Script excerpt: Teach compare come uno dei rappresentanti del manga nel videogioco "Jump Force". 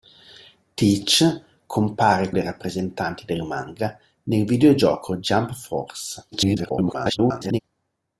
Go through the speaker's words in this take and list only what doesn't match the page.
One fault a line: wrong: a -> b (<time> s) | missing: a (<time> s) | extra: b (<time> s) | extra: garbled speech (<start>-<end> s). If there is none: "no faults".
missing: come uno (2.3 s)
extra: garbled speech (6.3-7.6 s)